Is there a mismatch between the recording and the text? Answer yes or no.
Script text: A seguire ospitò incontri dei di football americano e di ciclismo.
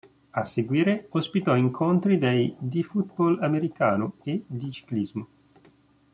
no